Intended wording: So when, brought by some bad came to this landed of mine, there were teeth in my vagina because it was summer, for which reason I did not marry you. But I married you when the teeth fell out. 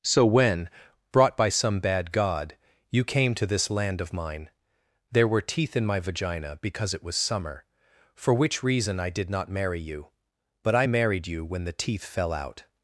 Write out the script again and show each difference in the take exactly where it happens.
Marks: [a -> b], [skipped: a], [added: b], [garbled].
So when, brought by some bad [added: god you] came to this [landed -> land] of mine, there were teeth in my vagina because it was summer, for which reason I did not marry you. But I married you when the teeth fell out.